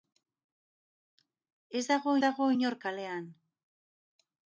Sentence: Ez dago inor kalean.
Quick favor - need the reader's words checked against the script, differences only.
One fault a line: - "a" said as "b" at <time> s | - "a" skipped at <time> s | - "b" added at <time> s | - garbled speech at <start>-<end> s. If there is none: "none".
- "dago" added at 2.2 s